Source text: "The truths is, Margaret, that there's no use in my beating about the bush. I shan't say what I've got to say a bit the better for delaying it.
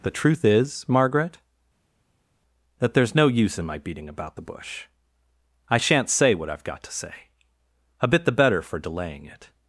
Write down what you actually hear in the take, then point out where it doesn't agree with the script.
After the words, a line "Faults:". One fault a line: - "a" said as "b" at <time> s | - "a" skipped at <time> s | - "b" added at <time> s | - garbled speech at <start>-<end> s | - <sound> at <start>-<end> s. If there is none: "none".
"The truth is, Margaret, that there's no use in my beating about the bush. I shan't say what I've got to say a bit the better for delaying it.
Faults:
- "truths" said as "truth" at 0.1 s